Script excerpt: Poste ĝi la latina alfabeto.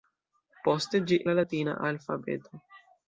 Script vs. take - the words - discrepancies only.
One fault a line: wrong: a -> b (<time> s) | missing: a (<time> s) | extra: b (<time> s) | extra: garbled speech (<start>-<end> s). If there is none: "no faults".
no faults